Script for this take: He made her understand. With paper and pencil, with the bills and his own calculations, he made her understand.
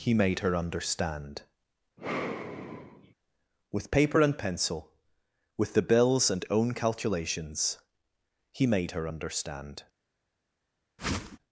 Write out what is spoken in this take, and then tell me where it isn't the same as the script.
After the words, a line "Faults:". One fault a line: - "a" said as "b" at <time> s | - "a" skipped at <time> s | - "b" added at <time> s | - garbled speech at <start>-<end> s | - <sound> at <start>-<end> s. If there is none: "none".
He made her understand. With paper and pencil, with the bills and own calculations, he made her understand.
Faults:
- sigh at 2.0-3.1 s
- "his" skipped at 6.4 s
- whoosh at 11.0-11.4 s